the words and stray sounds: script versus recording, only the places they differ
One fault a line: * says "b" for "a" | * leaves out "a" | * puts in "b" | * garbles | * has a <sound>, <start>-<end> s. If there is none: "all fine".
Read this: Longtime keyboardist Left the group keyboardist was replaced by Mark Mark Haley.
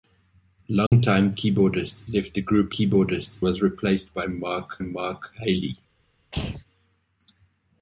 * has a dropout, 0.9-0.9 s
* has a throat clearing, 6.3-6.6 s